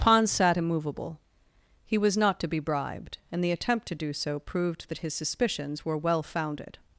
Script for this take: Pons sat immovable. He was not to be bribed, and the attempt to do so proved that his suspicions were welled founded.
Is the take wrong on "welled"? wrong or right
wrong